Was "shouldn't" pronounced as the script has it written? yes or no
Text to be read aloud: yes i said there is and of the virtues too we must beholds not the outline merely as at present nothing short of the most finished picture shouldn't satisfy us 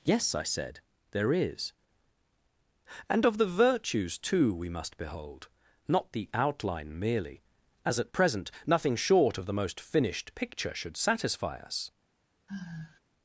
no